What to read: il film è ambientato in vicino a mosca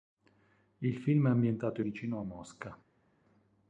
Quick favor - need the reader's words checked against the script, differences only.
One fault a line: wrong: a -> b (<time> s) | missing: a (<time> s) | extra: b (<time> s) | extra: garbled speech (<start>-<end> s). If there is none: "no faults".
no faults